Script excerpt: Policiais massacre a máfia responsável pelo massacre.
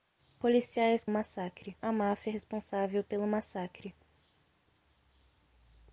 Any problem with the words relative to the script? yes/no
no